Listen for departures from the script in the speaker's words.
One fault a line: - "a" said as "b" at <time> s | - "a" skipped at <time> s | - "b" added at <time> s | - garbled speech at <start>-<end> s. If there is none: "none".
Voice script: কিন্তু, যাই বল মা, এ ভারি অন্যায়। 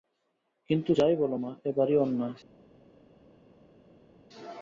none